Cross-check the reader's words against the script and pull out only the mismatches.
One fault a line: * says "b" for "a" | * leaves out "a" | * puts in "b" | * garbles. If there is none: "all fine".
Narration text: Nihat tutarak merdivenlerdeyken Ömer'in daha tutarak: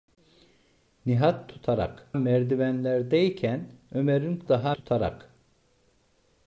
all fine